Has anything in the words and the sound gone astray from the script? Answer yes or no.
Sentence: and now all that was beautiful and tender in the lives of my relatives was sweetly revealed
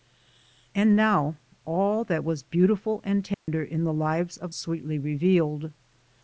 yes